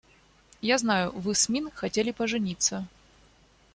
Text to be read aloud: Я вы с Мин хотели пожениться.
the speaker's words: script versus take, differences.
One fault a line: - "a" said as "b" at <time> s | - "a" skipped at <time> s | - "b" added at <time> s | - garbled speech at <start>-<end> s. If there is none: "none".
- "знаю" added at 0.8 s